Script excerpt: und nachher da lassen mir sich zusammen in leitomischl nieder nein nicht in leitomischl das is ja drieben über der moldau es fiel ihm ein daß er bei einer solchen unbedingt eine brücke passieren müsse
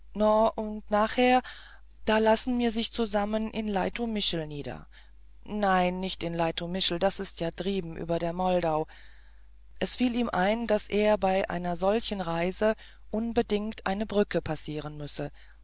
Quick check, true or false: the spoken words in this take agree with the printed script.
false